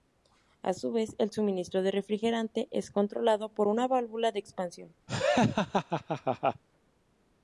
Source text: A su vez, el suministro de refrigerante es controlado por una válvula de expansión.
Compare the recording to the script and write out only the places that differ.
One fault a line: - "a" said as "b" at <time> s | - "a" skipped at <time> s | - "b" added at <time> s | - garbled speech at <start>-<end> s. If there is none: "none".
none